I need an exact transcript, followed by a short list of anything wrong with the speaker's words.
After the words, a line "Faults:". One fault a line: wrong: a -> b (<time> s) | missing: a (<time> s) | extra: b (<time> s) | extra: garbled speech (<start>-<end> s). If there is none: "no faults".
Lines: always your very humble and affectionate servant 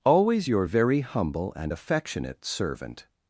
always your very humble and affectionate servant
Faults:
no faults